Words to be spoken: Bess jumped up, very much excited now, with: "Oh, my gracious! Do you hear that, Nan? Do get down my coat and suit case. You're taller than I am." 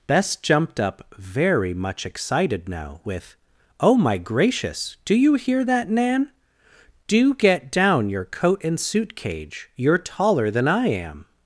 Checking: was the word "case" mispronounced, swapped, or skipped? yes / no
yes